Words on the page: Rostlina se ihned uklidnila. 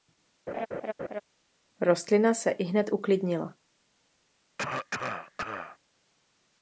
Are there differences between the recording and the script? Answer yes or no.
no